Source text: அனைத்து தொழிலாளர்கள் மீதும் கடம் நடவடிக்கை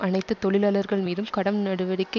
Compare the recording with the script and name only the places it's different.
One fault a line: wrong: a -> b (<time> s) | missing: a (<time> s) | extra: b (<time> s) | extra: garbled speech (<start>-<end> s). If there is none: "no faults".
no faults